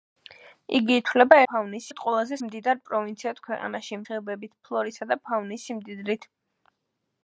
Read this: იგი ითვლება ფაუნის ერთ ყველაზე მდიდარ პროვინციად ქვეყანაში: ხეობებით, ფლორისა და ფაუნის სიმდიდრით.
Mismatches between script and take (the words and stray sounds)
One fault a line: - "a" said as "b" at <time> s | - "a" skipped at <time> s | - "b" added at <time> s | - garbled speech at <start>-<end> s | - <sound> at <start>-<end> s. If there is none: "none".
none